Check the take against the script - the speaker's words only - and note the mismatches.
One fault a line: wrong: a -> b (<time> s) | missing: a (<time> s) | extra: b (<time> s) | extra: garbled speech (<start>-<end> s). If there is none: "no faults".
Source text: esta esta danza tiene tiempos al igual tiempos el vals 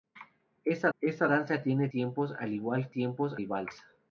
no faults